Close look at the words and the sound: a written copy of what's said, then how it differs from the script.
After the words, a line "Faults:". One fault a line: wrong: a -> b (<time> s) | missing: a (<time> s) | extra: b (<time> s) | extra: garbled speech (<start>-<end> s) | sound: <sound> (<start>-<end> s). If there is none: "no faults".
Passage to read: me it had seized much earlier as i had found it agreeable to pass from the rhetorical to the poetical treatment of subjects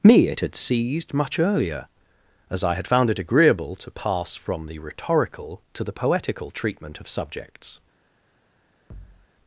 me it had seized much earlier as i had found it agreeable to pass from the rhetorical to the poetical treatment of subjects
Faults:
sound: thud (8.9-9.3 s)